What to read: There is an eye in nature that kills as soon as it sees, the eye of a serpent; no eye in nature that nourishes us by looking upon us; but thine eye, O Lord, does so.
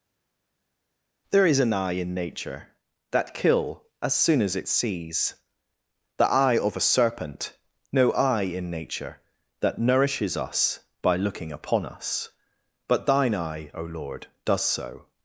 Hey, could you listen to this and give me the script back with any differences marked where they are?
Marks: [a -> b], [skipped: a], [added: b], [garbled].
There is an eye in nature that [kills -> kill] as soon as it sees, the eye of a serpent; no eye in nature that nourishes us by looking upon us; but thine eye, O Lord, does so.